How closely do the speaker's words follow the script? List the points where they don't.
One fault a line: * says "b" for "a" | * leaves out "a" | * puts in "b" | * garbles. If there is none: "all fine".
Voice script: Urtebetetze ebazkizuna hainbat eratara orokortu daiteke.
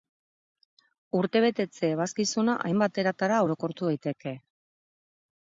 all fine